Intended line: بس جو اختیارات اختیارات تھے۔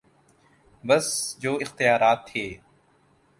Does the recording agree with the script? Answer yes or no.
no